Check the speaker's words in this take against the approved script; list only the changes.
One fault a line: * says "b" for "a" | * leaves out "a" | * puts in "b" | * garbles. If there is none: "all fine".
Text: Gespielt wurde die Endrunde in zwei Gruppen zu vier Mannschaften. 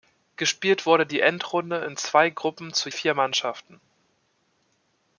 all fine